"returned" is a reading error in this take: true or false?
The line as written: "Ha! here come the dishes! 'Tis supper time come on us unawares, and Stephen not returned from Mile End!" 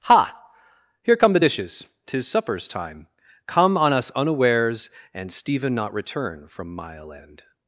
true